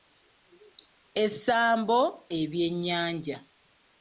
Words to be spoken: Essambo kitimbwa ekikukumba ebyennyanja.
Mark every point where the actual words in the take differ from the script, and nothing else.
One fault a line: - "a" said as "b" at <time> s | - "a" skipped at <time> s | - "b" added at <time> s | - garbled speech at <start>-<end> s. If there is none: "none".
- "kitimbwa ekikukumba" skipped at 2.0 s